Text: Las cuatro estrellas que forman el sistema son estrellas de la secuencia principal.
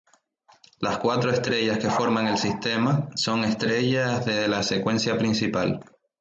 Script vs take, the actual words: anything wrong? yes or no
no